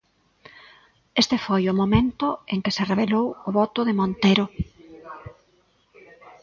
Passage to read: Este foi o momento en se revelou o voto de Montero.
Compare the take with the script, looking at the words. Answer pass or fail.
fail